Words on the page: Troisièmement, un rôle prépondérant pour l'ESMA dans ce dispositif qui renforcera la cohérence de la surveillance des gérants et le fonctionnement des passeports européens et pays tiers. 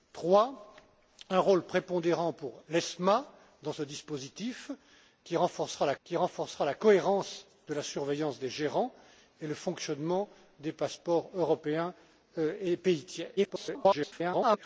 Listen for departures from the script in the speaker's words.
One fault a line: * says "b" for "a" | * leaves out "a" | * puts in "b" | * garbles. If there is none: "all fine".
* puts in "qui renforcera la"
* garbles